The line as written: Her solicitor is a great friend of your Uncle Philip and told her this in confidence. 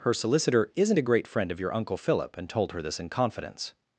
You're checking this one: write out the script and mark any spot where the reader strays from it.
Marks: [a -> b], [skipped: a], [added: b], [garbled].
Her solicitor [is -> isn't] a great friend of your Uncle Philip and told her this in confidence.